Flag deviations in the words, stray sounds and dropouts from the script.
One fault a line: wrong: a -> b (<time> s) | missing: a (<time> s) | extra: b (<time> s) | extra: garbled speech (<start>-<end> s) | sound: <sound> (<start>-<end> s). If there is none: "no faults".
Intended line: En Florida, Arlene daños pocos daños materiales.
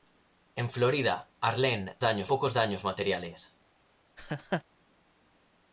sound: laugh (4.2-4.6 s)